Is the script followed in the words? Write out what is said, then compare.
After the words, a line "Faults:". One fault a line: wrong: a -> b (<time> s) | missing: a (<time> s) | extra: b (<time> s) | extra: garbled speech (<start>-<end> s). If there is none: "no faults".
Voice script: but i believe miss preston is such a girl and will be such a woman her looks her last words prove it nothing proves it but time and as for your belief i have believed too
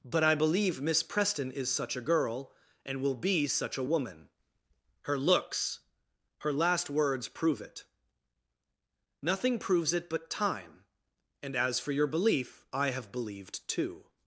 but i believe miss preston is such a girl and will be such a woman her looks her last words prove it nothing proves it but time and as for your belief i have believed too
Faults:
no faults